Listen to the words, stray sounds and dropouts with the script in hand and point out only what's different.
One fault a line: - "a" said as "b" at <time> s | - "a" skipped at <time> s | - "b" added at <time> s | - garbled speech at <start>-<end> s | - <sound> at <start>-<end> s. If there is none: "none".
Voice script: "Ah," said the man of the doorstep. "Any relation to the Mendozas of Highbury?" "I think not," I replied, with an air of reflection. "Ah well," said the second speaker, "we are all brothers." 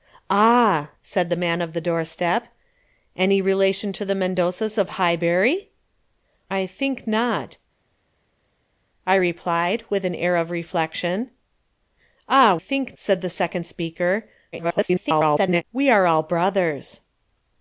- "well" said as "think" at 12.5 s
- garbled speech at 14.5-15.6 s